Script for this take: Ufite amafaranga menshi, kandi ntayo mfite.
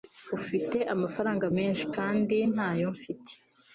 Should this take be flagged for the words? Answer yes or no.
no